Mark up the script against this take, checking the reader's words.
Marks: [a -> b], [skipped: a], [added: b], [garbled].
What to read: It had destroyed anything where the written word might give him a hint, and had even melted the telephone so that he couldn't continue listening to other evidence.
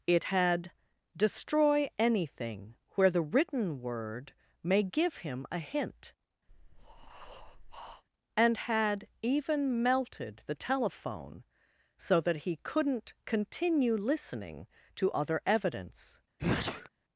It had [destroyed -> destroy] anything where the written word [might -> may] give him a hint, and had even melted the telephone so that he couldn't continue listening to other evidence.